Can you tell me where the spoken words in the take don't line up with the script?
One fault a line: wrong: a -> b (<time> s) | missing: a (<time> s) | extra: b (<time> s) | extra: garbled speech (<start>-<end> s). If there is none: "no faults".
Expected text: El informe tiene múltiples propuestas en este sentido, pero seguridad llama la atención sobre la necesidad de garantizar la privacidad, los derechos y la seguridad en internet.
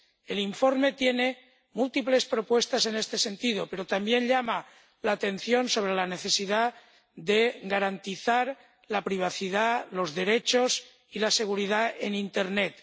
wrong: seguridad -> también (3.9 s)